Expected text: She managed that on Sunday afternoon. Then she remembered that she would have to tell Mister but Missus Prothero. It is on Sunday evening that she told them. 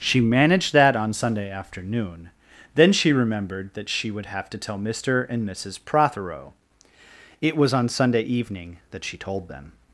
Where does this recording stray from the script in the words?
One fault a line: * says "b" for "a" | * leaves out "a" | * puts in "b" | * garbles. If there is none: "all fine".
* says "and" for "but"
* says "was" for "is"